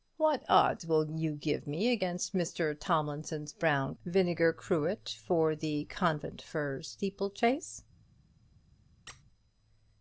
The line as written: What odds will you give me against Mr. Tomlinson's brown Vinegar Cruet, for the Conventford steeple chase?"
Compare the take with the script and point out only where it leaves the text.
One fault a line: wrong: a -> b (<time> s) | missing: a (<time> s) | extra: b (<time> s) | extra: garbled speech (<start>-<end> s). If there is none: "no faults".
no faults